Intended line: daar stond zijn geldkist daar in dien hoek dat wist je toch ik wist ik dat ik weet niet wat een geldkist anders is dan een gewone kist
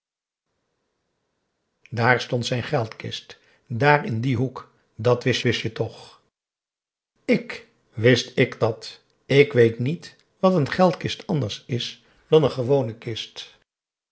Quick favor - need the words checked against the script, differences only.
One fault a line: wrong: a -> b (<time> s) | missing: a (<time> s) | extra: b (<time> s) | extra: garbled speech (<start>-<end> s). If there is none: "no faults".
extra: wist (5.4 s)